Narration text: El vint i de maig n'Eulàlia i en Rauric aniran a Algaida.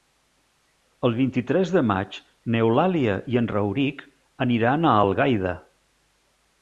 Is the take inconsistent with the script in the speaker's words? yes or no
yes